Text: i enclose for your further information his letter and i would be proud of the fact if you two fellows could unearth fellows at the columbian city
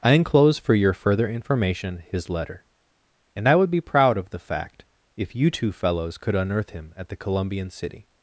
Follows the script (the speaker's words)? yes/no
no